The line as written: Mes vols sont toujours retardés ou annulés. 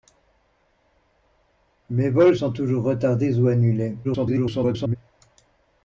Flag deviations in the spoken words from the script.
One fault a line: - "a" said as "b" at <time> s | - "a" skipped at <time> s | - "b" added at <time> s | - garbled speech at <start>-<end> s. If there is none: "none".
- garbled speech at 4.0-5.0 s